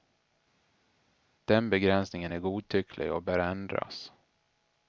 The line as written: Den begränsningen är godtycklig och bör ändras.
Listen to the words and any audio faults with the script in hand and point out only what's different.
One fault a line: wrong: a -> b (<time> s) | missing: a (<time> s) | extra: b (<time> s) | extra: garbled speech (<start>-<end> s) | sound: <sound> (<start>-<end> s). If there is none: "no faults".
no faults